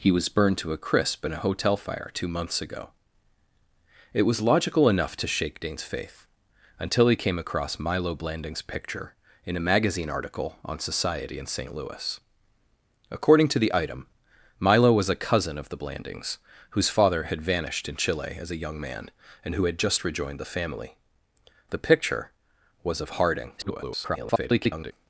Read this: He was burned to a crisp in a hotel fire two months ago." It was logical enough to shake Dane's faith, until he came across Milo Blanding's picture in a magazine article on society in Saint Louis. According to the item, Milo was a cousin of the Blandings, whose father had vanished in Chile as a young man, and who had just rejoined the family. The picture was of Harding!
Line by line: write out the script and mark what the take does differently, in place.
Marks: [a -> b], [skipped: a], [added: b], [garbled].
He was burned to a crisp in a hotel fire two months ago." It was logical enough to shake Dane's faith, until he came across Milo Blanding's picture in a magazine article on society in Saint Louis. According to the item, Milo was a cousin of the Blandings, whose father had vanished in Chile as a young man, and who had just rejoined the family. The picture was of Harding! [garbled]